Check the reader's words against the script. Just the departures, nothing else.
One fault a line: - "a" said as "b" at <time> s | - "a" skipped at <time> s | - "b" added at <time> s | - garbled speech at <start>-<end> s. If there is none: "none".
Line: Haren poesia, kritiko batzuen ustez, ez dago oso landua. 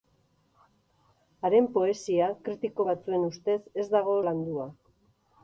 - "oso" skipped at 4.2 s